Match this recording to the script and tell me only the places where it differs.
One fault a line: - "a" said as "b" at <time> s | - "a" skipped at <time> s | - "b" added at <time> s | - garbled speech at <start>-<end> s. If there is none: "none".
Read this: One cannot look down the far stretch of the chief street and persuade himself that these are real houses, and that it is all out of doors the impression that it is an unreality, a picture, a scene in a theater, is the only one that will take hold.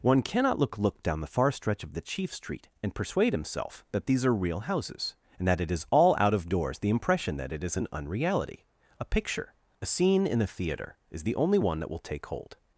- "look" added at 0.8 s